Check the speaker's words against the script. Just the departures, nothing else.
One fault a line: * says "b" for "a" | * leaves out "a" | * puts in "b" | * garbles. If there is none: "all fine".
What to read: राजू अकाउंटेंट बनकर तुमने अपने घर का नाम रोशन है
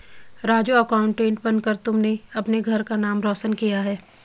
* puts in "किया"